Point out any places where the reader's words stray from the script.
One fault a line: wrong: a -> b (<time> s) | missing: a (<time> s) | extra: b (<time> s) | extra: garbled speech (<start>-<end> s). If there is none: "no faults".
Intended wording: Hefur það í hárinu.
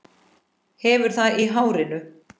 no faults